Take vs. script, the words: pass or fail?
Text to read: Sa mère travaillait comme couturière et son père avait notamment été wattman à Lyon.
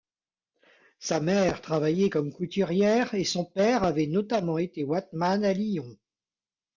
pass